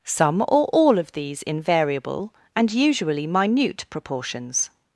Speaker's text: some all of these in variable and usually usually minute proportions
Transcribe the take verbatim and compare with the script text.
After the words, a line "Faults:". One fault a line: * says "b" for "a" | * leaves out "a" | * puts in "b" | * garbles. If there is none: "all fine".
some or all of these in variable and usually minute proportions
Faults:
* puts in "or"
* leaves out "usually"